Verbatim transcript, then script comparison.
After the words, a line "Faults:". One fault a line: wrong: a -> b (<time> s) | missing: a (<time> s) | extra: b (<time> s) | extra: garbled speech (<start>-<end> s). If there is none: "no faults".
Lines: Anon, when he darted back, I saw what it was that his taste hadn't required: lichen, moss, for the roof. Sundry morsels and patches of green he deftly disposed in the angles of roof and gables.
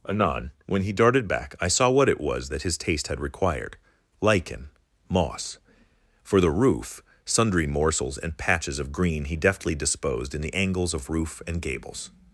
Anon, when he darted back, I saw what it was that his taste had required: lichen, moss, for the roof. Sundry morsels and patches of green he deftly disposed in the angles of roof and gables.
Faults:
wrong: hadn't -> had (3.1 s)